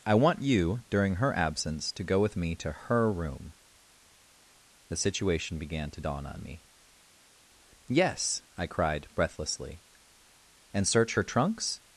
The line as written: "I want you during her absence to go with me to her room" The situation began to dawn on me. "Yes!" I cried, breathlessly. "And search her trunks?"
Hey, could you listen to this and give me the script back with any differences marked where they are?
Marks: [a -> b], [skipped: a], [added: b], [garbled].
"I want you during her absence to go with me to her room" The situation began to dawn on me. "Yes!" I cried, breathlessly. "And search her trunks?"